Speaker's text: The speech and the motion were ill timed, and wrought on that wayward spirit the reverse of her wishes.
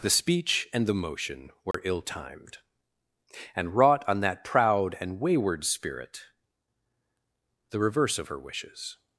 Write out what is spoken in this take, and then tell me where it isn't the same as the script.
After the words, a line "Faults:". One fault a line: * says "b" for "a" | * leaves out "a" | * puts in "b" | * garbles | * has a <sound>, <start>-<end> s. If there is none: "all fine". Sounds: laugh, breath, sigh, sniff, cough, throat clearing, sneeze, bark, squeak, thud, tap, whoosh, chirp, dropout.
The speech and the motion were ill timed, and wrought on that proud and wayward spirit the reverse of her wishes.
Faults:
* has a dropout, 1.7-1.7 s
* puts in "proud and"